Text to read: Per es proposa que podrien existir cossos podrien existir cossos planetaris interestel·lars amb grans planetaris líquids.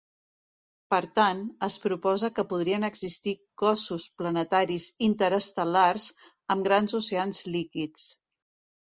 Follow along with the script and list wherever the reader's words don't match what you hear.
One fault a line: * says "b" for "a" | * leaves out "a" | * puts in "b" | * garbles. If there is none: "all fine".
* puts in "tant"
* leaves out "podrien existir cossos"
* says "oceans" for "planetaris"